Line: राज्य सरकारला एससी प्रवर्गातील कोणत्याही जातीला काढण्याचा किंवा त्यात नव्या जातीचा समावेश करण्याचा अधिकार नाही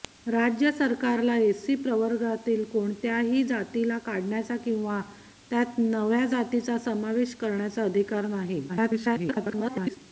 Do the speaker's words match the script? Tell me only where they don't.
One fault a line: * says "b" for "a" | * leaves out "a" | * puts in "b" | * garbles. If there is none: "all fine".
* garbles